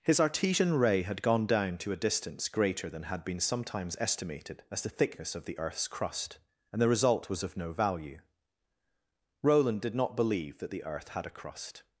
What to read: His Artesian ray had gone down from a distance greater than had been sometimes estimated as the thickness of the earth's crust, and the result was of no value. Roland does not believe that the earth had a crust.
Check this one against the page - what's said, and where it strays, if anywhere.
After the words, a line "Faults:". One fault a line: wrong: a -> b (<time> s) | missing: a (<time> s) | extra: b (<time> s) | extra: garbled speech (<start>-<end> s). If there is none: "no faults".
His Artesian ray had gone down to a distance greater than had been sometimes estimated as the thickness of the earth's crust, and the result was of no value. Roland did not believe that the earth had a crust.
Faults:
wrong: from -> to (1.8 s)
wrong: does -> did (9.8 s)